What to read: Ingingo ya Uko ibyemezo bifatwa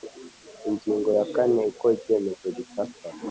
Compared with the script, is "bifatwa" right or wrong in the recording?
right